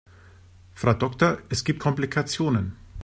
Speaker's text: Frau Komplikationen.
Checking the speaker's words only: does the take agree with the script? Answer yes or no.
no